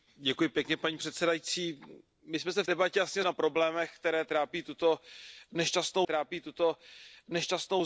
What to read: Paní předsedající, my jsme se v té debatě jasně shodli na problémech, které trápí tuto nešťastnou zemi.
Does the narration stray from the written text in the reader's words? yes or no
yes